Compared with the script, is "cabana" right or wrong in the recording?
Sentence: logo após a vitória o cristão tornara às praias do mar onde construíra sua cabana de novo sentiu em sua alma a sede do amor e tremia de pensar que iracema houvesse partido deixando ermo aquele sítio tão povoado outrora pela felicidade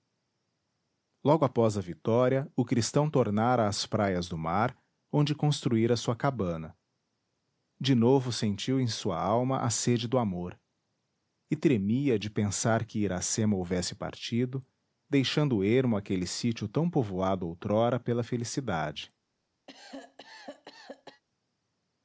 right